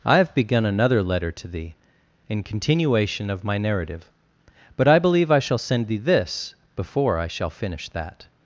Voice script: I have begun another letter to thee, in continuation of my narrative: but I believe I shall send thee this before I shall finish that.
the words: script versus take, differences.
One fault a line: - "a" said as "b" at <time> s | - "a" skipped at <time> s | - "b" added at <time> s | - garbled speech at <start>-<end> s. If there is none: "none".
none